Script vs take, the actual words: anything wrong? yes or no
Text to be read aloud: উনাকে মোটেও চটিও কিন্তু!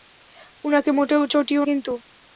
no